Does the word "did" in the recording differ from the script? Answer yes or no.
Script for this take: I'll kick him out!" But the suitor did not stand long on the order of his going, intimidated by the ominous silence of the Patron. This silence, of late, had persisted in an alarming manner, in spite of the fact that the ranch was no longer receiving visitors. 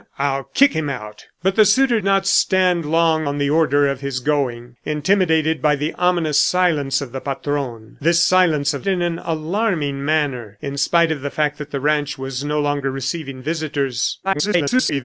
yes